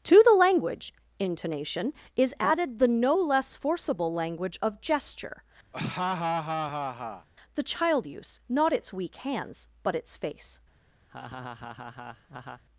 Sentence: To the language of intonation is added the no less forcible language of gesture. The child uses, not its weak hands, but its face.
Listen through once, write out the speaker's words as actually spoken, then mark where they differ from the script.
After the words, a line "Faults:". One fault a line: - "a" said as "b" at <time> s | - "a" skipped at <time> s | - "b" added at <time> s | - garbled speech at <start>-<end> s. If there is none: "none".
To the language intonation is added the no less forcible language of gesture. The child use, not its weak hands, but its face.
Faults:
- "of" skipped at 0.9 s
- "uses" said as "use" at 8.1 s